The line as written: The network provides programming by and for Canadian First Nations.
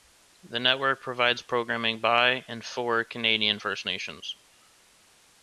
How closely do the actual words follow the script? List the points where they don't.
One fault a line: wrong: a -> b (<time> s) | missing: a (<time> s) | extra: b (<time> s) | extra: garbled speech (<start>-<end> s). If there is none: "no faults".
no faults